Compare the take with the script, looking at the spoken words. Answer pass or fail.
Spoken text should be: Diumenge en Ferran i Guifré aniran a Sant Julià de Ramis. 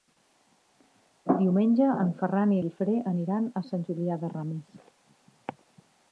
pass